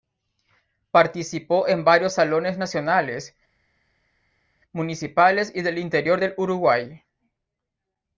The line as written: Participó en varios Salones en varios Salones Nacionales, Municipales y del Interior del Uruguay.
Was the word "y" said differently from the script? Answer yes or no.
no